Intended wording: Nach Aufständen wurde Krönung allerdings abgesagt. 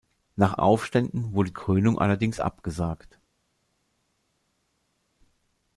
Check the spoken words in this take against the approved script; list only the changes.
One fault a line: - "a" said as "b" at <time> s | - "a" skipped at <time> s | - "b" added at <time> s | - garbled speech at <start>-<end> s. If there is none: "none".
none